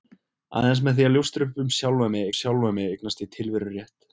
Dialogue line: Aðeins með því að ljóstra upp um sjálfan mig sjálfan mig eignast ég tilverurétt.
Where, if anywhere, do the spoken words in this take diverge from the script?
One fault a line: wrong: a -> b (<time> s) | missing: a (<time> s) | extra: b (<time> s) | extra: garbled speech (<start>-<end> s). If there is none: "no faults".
no faults